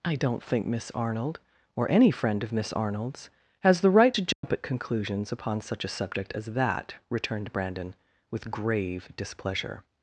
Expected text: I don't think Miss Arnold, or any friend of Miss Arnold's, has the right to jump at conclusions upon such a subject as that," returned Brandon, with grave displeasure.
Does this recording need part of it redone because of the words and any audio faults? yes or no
yes